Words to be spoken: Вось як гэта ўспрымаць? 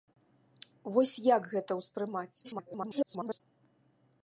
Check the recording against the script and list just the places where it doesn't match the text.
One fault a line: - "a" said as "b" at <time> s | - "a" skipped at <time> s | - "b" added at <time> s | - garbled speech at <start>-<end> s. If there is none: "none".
- garbled speech at 2.4-3.4 s